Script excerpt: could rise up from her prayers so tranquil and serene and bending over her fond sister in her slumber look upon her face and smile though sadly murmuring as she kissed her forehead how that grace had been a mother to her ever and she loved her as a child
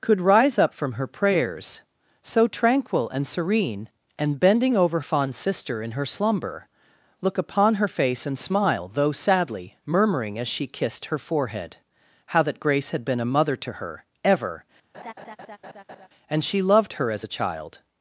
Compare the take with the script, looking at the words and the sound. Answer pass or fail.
fail